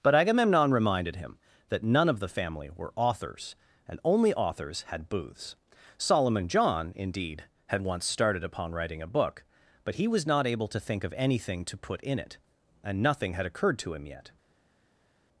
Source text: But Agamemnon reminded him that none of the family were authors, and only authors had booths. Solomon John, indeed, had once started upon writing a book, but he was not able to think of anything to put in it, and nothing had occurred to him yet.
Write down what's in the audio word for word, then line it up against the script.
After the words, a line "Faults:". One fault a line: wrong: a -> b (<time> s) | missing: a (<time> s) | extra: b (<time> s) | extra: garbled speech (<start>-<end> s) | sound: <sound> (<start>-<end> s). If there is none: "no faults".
But Agamemnon reminded him that none of the family were authors, and only authors had booths. Solomon John, indeed, had once started upon writing a book, but he was not able to think of anything to put in it, and nothing had occurred to him yet.
Faults:
no faults